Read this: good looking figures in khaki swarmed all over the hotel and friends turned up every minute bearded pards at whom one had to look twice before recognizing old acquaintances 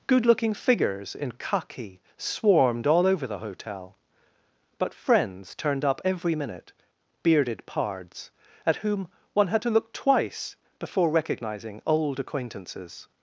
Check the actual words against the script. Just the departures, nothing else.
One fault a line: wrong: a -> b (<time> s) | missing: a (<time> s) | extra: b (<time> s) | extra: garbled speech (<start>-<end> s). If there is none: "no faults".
wrong: and -> but (4.8 s)